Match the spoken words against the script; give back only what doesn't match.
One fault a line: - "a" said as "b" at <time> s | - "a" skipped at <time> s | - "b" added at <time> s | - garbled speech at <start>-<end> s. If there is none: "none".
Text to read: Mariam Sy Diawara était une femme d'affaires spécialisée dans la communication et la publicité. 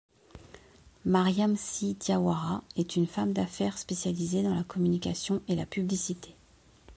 - "était" said as "est" at 2.8 s